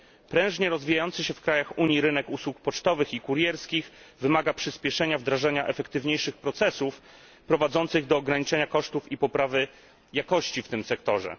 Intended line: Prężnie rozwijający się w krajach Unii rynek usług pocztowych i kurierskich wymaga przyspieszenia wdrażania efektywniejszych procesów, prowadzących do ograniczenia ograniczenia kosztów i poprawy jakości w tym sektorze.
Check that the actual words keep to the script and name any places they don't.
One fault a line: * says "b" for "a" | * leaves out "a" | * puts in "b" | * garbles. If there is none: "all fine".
* leaves out "ograniczenia"